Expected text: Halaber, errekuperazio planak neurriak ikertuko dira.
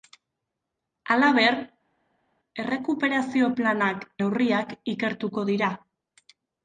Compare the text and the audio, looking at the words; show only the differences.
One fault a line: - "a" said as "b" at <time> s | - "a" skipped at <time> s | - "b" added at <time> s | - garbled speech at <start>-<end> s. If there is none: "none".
none